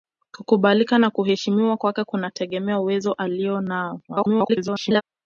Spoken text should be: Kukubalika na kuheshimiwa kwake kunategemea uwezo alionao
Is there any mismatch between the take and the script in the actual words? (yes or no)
yes